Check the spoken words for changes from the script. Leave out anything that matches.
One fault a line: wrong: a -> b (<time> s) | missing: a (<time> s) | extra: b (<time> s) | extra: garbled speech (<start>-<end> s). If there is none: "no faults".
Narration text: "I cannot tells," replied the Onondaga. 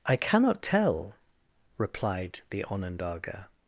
wrong: tells -> tell (0.6 s)